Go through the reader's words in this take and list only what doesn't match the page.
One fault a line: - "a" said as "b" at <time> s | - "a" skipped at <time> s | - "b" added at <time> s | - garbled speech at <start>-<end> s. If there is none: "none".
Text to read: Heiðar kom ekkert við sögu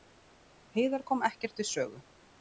none